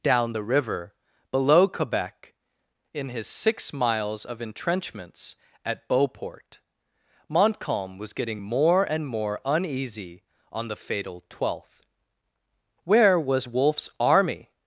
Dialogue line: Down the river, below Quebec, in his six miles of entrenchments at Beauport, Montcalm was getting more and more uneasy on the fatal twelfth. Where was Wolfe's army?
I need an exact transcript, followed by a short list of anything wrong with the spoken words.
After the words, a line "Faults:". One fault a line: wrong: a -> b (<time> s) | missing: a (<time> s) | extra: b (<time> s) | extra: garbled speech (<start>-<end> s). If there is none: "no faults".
Down the river, below Quebec, in his six miles of entrenchments at Beauport, Montcalm was getting more and more uneasy on the fatal twelfth. Where was Wolfe's army?
Faults:
no faults